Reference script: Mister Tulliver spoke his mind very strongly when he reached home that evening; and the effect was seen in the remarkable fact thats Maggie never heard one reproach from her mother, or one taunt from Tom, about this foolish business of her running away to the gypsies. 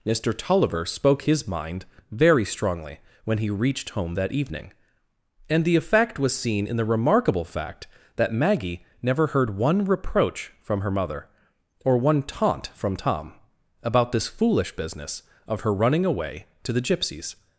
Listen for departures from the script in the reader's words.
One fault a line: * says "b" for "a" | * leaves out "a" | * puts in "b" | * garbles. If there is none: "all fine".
* says "that" for "thats"